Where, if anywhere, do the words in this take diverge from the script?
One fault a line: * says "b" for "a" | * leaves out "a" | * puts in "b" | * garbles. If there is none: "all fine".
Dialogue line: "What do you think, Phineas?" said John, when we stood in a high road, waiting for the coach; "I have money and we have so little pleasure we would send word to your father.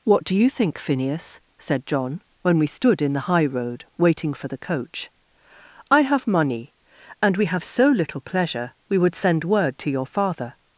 * says "the" for "a"